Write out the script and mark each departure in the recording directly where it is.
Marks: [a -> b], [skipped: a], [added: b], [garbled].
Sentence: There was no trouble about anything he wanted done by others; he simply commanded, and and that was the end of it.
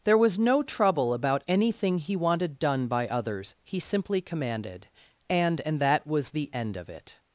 There was no trouble about anything he wanted done by others; he simply commanded, and and that was the end of it.